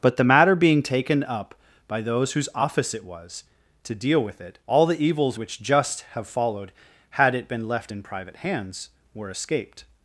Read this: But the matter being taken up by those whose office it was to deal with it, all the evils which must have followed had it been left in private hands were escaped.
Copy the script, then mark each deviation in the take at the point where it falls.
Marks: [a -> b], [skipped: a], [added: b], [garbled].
But the matter being taken up by those whose office it was to deal with it, all the evils which [must -> just] have followed had it been left in private hands were escaped.